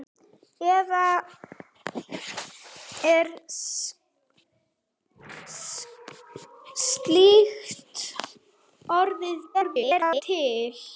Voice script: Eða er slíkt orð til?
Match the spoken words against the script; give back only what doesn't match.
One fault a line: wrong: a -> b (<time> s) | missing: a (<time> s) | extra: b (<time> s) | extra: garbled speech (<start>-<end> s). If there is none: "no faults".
extra: garbled speech (9.5-10.2 s)